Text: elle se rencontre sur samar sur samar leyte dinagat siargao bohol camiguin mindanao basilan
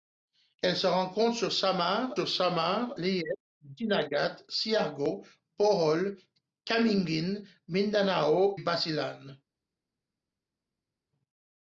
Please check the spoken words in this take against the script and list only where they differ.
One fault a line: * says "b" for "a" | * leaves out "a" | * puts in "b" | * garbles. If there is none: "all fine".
all fine